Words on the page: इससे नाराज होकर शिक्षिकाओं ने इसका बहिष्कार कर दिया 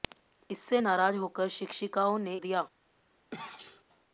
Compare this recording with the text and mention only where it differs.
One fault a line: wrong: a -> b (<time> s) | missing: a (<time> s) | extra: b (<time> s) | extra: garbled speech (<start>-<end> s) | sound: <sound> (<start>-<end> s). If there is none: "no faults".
missing: इसका बहिष्कार कर (2.4 s)
sound: sneeze (3.3-3.8 s)